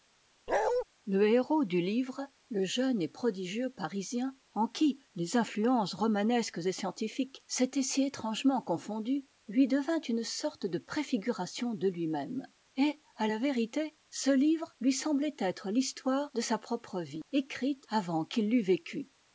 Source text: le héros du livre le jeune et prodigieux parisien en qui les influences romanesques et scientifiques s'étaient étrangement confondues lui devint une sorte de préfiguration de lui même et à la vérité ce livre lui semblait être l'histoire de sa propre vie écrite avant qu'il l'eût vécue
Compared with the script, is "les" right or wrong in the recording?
right